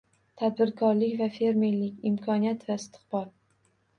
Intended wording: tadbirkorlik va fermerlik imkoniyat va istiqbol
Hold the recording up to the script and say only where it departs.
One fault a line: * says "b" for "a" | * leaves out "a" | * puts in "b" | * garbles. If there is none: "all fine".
all fine